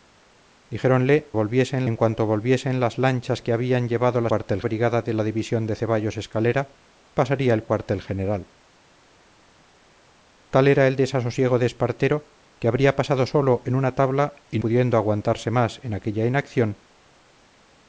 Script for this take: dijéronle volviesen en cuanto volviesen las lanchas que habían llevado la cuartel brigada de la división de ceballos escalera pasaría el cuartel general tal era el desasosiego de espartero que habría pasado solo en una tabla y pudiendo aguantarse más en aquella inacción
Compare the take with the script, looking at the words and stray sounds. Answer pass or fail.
pass